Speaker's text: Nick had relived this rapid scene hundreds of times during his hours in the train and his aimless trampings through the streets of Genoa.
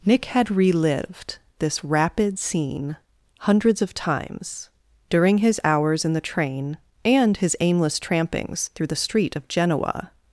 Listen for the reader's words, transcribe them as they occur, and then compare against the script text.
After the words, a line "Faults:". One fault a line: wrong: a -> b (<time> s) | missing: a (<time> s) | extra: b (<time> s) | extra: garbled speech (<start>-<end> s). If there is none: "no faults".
Nick had relived this rapid scene hundreds of times during his hours in the train and his aimless trampings through the street of Genoa.
Faults:
wrong: streets -> street (9.0 s)